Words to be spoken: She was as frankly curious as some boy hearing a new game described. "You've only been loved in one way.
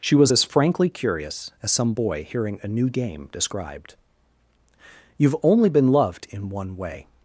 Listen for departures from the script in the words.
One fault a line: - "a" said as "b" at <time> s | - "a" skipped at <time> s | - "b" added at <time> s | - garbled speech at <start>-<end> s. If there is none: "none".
none